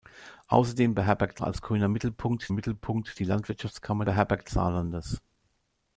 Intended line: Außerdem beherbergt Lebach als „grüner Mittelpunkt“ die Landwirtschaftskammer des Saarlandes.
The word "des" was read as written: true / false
false